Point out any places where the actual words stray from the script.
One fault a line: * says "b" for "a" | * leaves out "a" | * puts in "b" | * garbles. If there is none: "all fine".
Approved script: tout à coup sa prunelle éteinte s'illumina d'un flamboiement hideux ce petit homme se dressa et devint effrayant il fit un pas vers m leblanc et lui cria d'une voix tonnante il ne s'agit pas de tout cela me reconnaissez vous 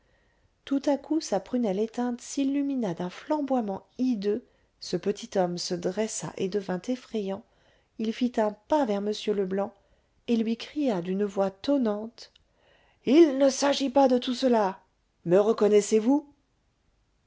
all fine